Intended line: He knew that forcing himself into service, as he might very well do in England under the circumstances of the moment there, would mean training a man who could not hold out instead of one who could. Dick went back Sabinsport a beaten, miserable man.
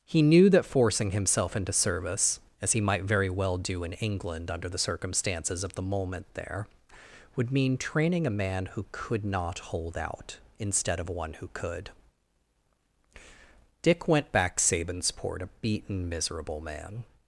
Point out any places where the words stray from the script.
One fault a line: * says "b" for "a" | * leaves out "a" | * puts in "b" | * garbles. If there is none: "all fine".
all fine